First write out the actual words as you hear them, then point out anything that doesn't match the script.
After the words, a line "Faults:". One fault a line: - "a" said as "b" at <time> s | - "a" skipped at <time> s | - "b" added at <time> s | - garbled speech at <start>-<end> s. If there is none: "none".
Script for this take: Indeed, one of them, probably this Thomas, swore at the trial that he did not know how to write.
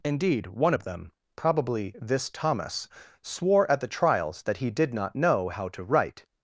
Indeed, one of them, probably this Thomas, swore at the trials that he did not know how to write.
Faults:
- "trial" said as "trials" at 3.9 s